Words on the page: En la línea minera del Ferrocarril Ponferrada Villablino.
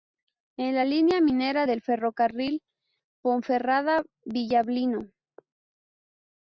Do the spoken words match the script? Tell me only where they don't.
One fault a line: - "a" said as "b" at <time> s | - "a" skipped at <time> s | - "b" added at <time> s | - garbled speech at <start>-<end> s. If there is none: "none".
none